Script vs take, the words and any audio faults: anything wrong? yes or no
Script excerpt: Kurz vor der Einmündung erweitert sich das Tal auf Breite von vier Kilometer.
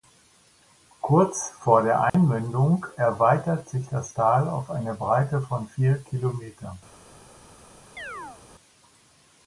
yes